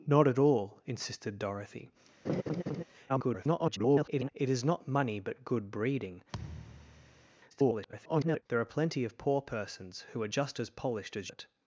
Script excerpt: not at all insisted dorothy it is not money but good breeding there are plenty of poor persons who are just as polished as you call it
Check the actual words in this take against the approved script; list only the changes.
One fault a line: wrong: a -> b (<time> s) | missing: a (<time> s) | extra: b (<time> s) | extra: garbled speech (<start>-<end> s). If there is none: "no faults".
extra: garbled speech (3.1-4.3 s)
extra: garbled speech (7.5-8.4 s)
missing: you call (11.3 s)